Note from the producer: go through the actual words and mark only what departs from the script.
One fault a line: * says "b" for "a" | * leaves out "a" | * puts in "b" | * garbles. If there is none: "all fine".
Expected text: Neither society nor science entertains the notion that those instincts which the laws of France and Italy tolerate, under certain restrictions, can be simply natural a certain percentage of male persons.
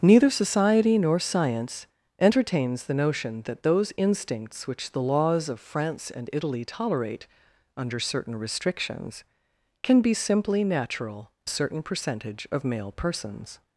all fine